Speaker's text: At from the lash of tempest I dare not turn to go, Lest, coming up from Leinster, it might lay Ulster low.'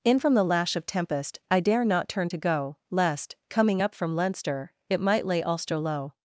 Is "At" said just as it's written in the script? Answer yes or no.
no